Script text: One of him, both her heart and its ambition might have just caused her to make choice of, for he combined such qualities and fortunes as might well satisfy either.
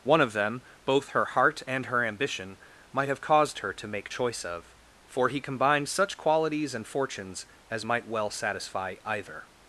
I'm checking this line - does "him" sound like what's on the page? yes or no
no